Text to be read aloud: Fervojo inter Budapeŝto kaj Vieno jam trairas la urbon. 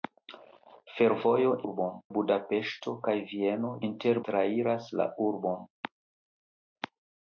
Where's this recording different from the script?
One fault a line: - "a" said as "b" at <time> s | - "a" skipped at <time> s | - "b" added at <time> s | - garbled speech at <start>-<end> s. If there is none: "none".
- "inter" said as "urbon" at 1.7 s
- "jam" said as "inter" at 3.9 s